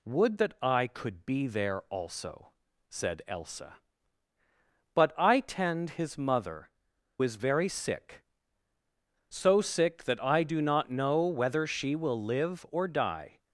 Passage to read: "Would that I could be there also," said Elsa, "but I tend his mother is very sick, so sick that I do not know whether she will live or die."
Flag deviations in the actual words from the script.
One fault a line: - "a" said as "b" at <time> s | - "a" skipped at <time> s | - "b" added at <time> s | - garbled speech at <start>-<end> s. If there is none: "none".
none